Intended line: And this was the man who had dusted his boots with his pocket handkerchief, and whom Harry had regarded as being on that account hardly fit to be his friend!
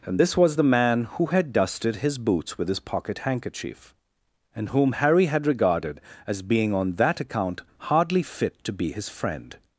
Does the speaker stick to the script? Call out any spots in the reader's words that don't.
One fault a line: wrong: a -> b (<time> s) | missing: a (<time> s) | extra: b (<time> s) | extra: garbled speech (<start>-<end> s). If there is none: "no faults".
no faults